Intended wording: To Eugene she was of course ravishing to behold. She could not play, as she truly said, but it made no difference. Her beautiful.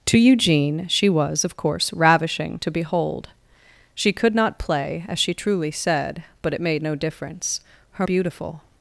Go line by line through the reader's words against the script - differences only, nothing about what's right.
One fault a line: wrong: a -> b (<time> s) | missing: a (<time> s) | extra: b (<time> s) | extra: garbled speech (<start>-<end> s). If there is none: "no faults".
no faults